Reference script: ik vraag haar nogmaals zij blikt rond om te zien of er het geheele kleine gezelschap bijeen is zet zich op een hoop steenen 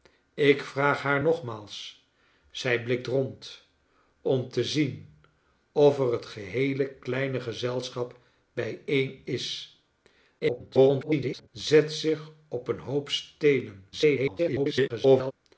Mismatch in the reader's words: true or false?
true